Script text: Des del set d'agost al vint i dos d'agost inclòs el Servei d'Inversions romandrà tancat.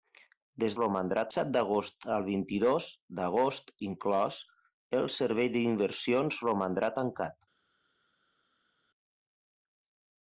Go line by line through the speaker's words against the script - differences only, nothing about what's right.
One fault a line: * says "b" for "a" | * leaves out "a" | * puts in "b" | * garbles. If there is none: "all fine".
* says "romandrà" for "del"